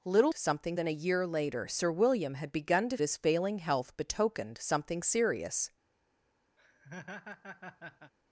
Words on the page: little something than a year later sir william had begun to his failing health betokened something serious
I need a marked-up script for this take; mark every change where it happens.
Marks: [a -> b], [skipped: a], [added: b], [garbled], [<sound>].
little something than a year later sir william had begun to his failing health betokened something serious [laugh]